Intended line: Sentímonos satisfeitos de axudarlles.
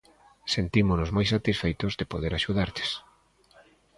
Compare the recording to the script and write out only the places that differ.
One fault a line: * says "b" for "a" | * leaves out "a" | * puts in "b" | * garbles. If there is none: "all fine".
* puts in "moi"
* puts in "poder"